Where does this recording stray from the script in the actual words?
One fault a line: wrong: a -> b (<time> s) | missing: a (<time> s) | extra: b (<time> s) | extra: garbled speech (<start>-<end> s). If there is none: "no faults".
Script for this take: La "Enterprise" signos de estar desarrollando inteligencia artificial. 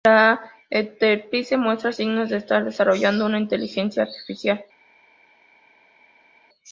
extra: muestra (1.6 s)
extra: una (3.3 s)